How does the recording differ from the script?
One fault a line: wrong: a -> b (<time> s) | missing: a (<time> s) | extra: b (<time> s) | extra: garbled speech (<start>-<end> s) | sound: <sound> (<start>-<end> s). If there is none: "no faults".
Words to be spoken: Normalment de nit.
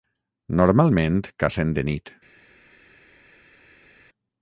extra: cacen (1.4 s)